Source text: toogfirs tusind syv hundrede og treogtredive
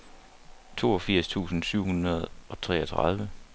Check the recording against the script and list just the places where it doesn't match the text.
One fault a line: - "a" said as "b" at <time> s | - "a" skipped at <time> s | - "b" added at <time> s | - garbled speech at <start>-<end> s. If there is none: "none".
none